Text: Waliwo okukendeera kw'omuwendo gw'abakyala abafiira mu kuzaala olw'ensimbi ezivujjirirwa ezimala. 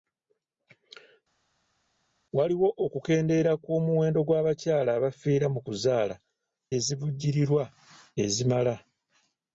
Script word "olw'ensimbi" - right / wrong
wrong